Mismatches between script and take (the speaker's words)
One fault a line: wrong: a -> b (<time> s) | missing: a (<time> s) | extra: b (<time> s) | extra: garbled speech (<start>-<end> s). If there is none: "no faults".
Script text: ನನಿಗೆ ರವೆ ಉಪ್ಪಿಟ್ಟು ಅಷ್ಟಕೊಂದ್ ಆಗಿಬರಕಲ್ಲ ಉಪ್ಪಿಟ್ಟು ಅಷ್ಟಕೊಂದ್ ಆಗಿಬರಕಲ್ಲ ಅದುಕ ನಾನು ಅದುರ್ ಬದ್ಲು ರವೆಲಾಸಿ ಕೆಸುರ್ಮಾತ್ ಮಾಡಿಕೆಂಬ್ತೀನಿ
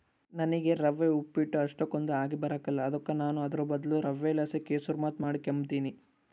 missing: ಉಪ್ಪಿಟ್ಟು ಅಷ್ಟಕೊಂದ್ ಆಗಿಬರಕಲ್ಲ (2.9 s)